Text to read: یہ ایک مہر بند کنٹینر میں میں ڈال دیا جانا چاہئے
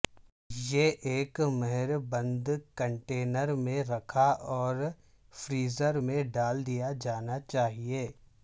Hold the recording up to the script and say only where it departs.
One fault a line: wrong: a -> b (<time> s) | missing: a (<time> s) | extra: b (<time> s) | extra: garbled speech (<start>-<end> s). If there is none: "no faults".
extra: رکھا اور فریزر (3.9 s)